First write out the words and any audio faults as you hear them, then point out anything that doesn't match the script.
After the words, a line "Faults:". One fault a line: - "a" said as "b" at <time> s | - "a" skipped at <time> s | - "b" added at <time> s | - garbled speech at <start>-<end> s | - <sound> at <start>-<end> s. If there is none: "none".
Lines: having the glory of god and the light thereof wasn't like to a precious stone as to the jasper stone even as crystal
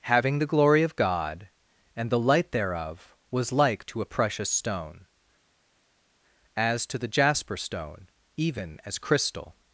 having the glory of god and the light thereof was like to a precious stone as to the jasper stone even as crystal
Faults:
- "wasn't" said as "was" at 3.3 s